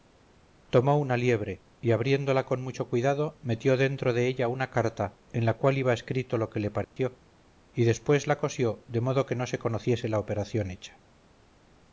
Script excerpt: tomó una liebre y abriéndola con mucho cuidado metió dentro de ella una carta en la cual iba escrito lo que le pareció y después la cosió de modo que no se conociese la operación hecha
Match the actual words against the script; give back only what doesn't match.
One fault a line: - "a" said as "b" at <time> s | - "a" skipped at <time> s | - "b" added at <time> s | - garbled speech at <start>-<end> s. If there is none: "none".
none